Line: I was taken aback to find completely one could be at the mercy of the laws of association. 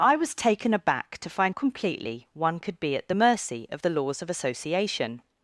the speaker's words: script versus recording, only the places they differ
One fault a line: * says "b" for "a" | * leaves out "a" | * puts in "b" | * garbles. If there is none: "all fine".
all fine